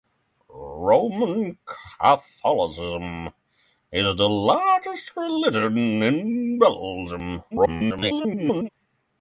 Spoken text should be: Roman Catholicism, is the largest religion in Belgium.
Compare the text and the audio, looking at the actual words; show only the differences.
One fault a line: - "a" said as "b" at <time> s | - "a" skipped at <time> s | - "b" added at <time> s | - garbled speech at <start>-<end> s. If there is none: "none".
- garbled speech at 7.5-8.7 s